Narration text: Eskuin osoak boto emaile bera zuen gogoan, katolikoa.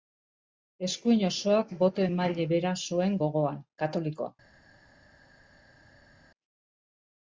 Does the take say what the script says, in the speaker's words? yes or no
yes